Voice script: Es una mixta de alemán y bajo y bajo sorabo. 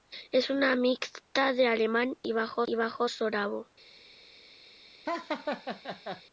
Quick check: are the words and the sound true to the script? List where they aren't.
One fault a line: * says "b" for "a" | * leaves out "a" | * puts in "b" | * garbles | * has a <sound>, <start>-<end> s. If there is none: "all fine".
* has a laugh, 5.1-6.2 s